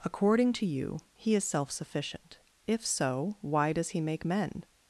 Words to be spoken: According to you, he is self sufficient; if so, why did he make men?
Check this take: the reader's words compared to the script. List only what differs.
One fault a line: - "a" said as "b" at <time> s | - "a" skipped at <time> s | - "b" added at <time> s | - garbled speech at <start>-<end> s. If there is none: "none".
- "did" said as "does" at 3.7 s